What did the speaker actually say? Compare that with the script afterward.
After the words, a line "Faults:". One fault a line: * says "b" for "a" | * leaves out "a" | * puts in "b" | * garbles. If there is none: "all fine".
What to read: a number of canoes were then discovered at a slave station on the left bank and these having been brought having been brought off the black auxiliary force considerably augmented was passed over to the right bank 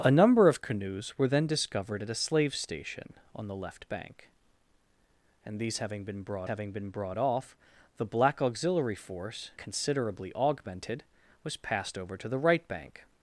a number of canoes were then discovered at a slave station on the left bank and these having been brought having been brought off the black auxiliary force considerably augmented was passed over to the right bank
Faults:
all fine